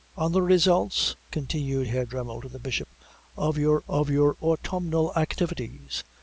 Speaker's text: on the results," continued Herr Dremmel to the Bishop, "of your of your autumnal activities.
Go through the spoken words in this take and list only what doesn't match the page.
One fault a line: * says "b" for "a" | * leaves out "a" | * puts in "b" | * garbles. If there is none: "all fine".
all fine